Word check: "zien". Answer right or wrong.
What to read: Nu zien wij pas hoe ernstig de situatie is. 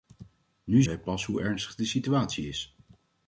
wrong